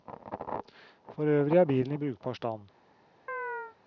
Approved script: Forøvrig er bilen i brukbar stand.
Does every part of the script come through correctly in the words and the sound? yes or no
no